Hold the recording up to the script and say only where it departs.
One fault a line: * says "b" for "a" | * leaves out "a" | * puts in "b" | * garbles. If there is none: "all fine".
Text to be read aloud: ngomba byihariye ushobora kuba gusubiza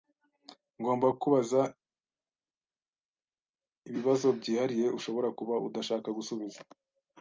* puts in "kukubaza ibibazo"
* puts in "udashaka"